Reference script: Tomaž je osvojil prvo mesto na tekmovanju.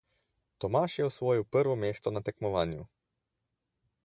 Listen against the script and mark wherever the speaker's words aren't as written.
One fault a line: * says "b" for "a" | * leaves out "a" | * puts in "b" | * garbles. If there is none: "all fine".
all fine